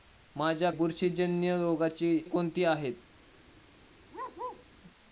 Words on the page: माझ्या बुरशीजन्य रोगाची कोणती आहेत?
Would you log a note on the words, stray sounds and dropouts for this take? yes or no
yes